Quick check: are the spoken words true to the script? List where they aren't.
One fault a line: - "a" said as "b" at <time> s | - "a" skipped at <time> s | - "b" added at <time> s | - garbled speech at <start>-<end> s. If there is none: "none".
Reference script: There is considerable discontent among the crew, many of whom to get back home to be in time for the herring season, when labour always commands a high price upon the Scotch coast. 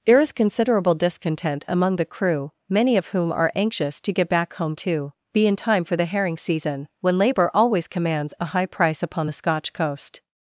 - "are anxious" added at 3.3 s